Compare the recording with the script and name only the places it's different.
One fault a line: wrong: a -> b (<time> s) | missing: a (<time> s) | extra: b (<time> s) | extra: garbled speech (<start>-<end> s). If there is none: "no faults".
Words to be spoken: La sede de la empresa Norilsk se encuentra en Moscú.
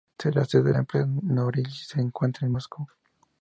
no faults